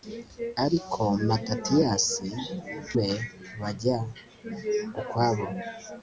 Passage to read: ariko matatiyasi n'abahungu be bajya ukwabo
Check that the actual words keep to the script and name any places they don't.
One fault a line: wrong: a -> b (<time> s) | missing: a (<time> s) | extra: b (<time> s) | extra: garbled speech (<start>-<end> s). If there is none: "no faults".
missing: n'abahungu (2.3 s)